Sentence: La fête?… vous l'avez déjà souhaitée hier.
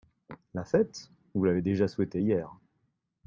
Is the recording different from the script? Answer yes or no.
no